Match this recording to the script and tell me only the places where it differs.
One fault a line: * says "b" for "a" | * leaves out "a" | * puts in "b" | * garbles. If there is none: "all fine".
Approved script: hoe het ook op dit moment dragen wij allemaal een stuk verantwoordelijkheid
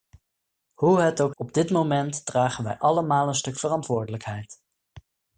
all fine